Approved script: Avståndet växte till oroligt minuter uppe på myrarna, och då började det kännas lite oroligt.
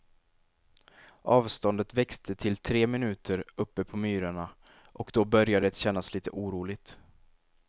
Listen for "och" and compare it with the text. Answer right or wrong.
right